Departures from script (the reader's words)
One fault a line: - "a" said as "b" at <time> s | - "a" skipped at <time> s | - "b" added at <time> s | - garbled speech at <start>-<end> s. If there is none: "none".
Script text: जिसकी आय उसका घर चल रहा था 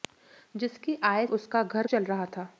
none